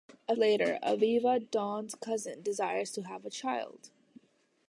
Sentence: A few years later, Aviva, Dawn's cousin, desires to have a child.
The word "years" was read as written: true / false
false